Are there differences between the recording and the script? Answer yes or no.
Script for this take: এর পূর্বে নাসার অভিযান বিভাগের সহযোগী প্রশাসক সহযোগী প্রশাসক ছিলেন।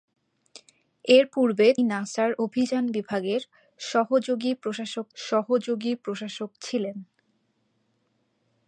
no